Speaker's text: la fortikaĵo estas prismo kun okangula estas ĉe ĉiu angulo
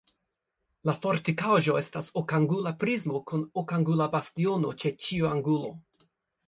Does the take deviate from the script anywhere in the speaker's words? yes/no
yes